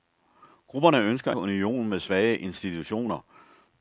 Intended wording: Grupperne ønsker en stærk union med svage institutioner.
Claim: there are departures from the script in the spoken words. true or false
true